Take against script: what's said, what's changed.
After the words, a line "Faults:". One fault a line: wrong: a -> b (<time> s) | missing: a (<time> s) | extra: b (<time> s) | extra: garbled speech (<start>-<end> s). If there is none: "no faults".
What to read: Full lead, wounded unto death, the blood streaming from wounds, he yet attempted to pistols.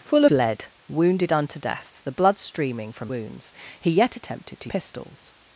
Full lead, wounded unto death, the blood streaming from wounds, he yet attempted to pistols.
Faults:
no faults